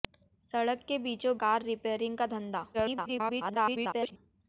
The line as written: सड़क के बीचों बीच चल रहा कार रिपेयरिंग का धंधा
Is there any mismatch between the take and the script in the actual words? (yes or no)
yes